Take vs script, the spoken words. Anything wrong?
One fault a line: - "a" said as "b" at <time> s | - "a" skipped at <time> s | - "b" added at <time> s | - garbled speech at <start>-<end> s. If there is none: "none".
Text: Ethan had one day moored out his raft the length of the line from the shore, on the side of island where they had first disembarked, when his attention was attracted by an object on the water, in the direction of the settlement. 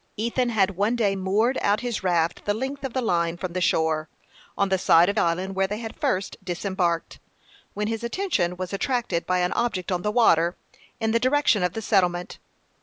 none